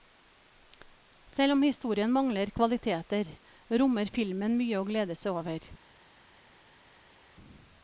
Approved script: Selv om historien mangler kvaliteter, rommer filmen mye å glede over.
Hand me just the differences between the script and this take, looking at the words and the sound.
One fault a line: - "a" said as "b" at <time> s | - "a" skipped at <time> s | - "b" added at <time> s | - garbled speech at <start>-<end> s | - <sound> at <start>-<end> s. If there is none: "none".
- "seg" added at 5.2 s